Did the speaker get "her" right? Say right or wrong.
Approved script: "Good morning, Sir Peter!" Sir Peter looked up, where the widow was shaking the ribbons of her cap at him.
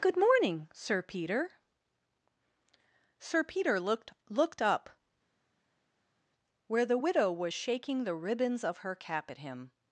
right